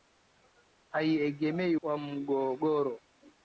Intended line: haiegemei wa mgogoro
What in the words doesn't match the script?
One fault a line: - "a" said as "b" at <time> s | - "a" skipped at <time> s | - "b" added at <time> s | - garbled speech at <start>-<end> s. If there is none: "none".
none